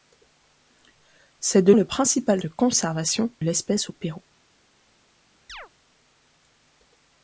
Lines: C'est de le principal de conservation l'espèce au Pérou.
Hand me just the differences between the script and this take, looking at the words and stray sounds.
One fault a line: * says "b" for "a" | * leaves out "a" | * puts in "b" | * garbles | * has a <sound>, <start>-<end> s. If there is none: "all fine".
* has a chirp, 5.5-5.7 s